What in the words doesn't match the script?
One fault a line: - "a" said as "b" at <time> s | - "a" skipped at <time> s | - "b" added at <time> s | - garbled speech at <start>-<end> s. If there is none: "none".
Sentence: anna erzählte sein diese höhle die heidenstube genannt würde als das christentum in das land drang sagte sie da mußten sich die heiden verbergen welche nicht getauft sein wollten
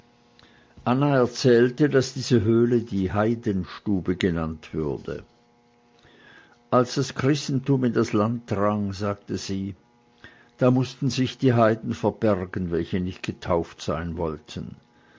- "sein" said as "daß" at 1.9 s